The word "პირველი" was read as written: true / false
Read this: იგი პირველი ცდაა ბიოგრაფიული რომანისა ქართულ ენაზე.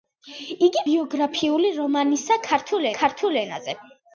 false